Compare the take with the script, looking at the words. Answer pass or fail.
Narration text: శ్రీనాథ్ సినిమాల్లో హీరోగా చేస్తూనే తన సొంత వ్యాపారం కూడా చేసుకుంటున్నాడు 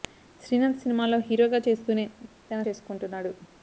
fail